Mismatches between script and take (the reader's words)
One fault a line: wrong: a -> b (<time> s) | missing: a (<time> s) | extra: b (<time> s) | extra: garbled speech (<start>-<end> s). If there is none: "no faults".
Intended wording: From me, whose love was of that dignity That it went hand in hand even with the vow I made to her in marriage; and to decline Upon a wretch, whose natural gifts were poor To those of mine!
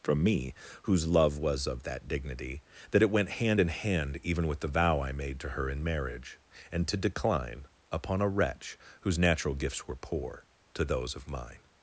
no faults